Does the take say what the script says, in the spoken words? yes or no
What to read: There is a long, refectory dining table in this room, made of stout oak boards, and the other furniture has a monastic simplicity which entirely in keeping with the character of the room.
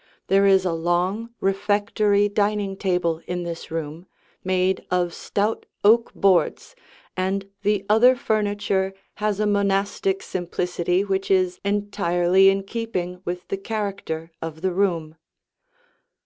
no